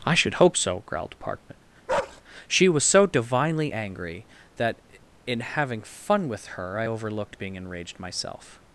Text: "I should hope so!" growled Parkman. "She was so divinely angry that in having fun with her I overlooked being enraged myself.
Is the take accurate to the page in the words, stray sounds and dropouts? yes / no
no